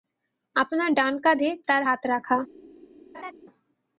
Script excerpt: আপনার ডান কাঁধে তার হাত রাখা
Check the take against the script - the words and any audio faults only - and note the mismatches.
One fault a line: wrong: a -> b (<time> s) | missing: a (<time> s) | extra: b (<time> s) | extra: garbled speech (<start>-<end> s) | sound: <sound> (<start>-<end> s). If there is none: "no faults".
sound: laugh (3.1-3.3 s)